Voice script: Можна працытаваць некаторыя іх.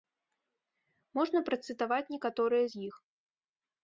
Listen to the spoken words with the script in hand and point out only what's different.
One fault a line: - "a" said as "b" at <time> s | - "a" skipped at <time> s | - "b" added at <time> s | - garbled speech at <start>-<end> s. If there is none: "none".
- "з" added at 2.7 s